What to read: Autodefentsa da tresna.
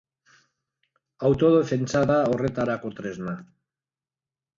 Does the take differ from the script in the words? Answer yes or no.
yes